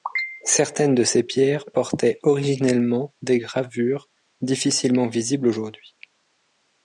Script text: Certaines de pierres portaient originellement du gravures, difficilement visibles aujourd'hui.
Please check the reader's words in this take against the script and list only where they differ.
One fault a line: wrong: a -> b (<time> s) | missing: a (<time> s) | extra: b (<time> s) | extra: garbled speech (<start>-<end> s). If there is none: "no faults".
extra: ces (1.0 s)
wrong: du -> des (3.2 s)